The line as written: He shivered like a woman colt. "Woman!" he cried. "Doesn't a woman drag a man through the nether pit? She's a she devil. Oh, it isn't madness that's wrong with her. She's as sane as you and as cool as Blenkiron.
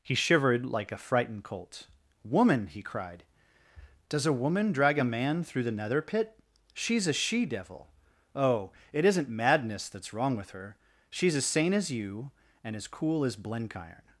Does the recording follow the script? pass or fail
fail